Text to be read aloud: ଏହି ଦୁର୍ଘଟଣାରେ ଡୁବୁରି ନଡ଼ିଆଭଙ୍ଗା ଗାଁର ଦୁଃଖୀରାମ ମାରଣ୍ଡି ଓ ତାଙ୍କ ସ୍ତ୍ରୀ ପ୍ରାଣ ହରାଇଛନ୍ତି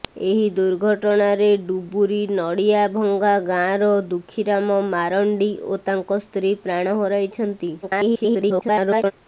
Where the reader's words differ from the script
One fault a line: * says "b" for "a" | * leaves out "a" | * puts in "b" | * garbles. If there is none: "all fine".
* garbles